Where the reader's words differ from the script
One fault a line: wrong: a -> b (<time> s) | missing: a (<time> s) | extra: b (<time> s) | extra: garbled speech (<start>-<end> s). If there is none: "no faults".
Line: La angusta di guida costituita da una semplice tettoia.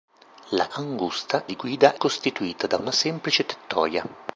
no faults